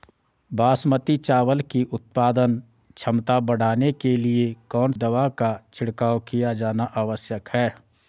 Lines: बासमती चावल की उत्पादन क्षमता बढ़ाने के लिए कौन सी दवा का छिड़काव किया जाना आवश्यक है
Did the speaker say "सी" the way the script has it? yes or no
no